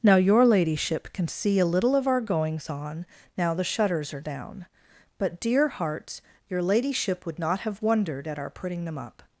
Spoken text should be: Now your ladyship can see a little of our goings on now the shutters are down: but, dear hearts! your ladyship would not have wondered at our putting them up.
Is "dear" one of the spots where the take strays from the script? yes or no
no